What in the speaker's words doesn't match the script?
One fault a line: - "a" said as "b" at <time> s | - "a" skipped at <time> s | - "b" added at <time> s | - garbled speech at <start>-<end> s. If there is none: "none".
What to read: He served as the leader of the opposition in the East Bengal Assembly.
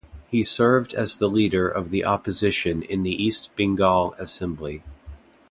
none